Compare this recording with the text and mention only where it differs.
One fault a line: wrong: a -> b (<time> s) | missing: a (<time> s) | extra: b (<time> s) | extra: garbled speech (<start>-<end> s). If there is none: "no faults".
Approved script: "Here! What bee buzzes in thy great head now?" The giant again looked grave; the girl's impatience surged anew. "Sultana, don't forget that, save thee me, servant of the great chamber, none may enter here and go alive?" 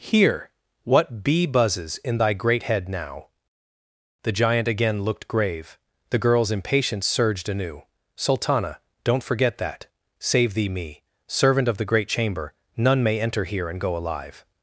no faults